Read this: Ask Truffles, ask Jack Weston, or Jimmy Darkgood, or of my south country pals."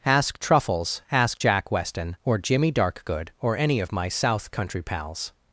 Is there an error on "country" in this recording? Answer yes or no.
no